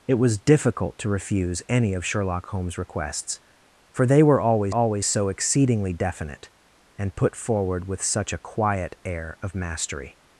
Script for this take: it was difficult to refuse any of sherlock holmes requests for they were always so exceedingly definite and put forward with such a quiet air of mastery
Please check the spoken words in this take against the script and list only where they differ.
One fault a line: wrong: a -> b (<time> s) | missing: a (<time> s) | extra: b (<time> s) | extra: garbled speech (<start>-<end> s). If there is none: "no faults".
extra: always (4.7 s)